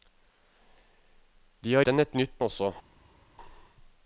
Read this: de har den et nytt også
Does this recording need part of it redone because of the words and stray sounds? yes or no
no